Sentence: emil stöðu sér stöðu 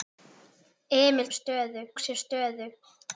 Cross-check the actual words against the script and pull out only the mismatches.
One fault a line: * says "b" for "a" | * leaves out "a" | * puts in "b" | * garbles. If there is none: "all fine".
all fine